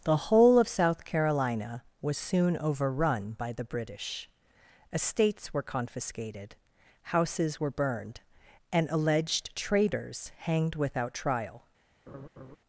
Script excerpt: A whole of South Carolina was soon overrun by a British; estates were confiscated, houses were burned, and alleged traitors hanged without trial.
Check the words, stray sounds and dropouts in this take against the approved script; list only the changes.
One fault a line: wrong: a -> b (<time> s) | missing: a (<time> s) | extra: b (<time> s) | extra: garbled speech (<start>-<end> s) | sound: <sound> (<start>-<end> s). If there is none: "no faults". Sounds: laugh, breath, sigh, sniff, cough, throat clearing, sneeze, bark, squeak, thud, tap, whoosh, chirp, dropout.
wrong: A -> The (0.0 s)
wrong: a -> the (3.5 s)
sound: laugh (12.1-12.6 s)